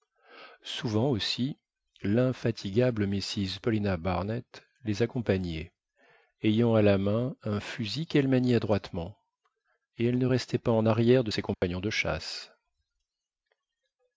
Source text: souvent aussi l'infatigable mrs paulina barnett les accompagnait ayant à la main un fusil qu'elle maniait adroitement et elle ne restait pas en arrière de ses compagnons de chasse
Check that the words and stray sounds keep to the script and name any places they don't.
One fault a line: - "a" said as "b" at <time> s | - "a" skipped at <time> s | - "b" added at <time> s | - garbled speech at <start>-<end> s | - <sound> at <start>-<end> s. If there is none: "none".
- dropout at 11.5-11.6 s